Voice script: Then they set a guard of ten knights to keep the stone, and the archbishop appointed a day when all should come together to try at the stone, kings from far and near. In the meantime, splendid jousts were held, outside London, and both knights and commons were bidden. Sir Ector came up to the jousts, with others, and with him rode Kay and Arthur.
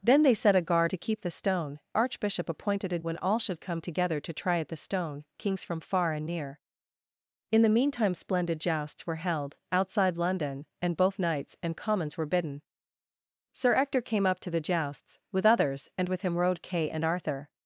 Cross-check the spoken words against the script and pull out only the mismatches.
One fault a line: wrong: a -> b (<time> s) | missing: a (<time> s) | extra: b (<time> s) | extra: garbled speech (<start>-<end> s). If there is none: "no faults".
missing: of ten knights (0.9 s)
missing: and the (1.8 s)
missing: day (3.0 s)